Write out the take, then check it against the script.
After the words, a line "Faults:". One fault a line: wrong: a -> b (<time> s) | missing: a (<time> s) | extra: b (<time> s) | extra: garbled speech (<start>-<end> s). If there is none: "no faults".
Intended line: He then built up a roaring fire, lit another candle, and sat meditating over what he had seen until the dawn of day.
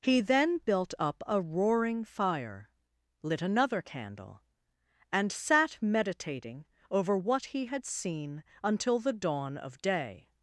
He then built up a roaring fire, lit another candle, and sat meditating over what he had seen until the dawn of day.
Faults:
no faults